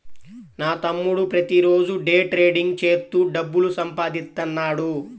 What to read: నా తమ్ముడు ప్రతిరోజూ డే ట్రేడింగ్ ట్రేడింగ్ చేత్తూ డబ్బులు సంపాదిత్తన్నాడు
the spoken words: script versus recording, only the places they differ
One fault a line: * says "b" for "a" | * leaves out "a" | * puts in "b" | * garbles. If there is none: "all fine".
* leaves out "ట్రేడింగ్"